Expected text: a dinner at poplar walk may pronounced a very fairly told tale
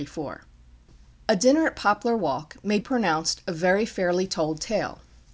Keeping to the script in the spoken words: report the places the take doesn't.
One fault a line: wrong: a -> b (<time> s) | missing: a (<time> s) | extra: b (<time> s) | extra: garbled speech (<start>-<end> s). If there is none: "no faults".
no faults